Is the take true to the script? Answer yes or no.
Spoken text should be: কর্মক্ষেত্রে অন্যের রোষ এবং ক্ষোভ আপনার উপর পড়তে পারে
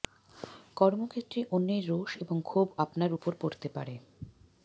yes